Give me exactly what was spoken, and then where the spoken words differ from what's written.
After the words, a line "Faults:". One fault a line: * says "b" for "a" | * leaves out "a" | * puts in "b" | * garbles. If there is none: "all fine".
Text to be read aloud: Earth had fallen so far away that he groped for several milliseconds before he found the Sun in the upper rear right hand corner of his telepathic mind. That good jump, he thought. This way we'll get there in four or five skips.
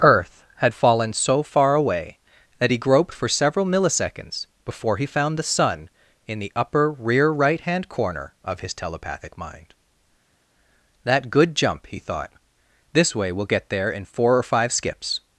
Earth had fallen so far away that he groped for several milliseconds before he found the Sun in the upper rear right hand corner of his telepathic mind. That good jump, he thought. This way we'll get there in four or five skips.
Faults:
all fine